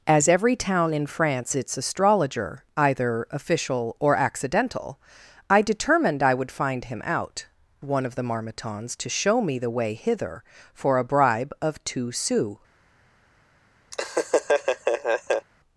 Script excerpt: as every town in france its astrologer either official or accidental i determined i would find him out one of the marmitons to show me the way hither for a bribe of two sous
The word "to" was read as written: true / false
true